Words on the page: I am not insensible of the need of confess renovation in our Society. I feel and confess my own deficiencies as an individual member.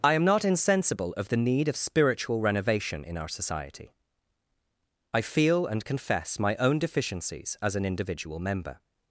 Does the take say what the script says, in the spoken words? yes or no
no